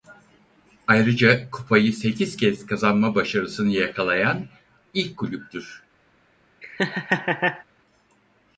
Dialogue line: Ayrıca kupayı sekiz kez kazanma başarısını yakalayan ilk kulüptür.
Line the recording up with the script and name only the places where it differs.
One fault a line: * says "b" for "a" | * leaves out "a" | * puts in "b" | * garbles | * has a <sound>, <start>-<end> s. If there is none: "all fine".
* has a laugh, 6.6-7.6 s